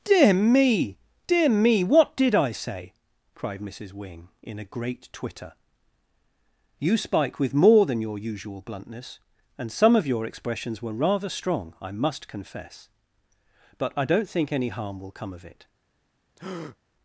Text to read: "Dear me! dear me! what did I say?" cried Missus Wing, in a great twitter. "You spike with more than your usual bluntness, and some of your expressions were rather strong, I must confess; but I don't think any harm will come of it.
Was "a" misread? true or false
false